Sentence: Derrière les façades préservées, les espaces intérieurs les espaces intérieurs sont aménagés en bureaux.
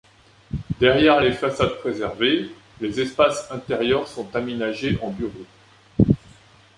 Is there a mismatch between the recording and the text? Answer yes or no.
yes